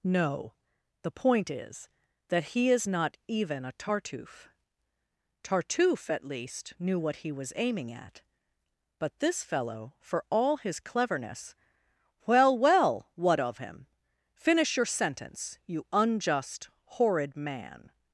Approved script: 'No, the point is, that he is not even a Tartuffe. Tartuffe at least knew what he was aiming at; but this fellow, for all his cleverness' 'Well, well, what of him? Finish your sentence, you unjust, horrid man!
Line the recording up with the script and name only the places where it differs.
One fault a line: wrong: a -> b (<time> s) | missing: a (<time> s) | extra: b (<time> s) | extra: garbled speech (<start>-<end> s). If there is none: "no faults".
no faults